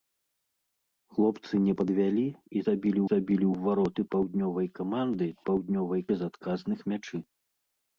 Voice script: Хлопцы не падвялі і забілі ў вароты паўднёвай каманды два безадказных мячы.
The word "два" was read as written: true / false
false